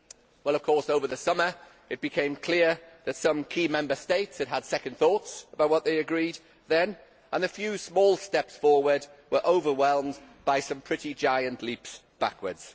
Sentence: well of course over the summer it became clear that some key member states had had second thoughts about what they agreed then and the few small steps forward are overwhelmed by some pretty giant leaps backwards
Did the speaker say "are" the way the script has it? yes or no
no